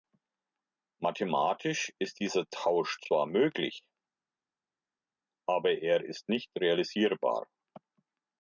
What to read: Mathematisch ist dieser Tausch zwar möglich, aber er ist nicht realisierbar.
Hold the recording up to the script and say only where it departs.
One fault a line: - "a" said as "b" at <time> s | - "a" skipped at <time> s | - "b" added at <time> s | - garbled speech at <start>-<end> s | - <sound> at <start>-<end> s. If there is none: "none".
none